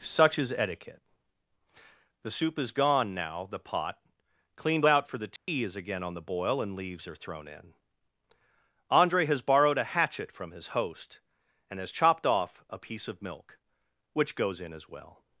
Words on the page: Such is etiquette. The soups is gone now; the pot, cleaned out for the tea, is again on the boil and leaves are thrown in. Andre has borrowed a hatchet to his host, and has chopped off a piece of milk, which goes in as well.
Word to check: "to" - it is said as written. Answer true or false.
false